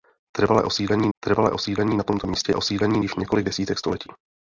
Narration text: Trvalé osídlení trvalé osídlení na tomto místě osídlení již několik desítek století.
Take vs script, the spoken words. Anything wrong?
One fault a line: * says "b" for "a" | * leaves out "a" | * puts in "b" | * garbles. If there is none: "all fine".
all fine